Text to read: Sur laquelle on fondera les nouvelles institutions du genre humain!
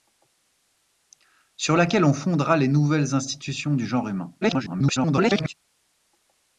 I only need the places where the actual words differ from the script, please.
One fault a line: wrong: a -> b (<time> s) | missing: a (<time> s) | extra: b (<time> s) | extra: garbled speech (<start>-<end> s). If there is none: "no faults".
extra: garbled speech (4.4-5.5 s)